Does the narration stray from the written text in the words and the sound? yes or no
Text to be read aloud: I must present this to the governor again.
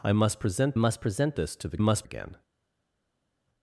yes